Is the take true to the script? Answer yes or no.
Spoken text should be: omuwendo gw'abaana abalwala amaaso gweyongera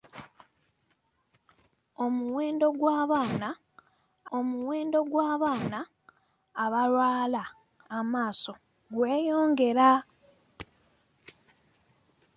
no